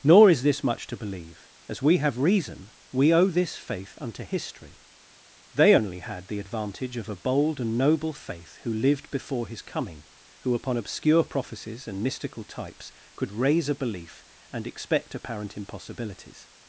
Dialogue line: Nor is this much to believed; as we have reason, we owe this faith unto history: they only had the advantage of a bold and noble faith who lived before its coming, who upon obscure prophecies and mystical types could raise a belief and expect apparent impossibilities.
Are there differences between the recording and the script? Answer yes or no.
yes